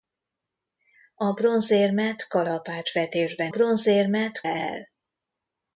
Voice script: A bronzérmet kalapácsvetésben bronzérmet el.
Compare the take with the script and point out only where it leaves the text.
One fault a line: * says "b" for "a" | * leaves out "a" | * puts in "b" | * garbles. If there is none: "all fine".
all fine